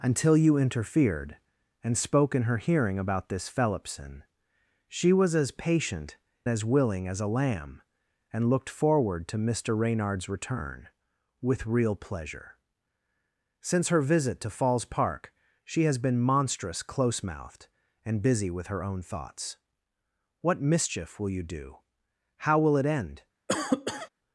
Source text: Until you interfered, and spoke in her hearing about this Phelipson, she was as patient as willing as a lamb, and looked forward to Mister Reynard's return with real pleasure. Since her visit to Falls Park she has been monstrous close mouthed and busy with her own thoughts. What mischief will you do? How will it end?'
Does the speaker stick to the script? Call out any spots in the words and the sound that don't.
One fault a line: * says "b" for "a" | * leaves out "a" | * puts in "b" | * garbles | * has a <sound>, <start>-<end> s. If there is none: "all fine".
* has a cough, 23.5-24.1 s